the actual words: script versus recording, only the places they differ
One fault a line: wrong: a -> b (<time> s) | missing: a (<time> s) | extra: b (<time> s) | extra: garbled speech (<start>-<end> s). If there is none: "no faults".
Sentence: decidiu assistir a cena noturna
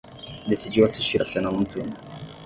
no faults